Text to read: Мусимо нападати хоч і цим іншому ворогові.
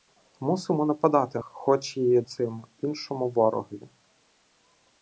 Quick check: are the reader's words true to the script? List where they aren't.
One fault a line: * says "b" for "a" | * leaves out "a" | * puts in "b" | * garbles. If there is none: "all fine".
all fine